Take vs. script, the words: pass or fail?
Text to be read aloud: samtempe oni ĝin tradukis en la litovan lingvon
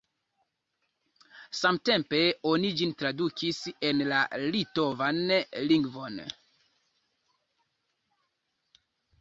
pass